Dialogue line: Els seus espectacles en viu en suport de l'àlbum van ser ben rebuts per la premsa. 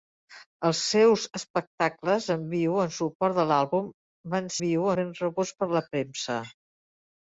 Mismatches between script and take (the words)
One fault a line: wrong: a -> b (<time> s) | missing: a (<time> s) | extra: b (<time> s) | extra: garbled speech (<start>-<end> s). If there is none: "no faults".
wrong: ser -> viu (4.6 s)